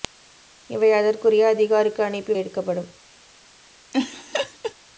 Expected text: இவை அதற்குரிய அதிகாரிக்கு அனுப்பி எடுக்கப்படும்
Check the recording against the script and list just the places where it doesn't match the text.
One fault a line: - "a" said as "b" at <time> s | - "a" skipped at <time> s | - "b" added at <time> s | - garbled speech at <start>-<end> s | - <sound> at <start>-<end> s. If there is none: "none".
- laugh at 3.9-4.7 s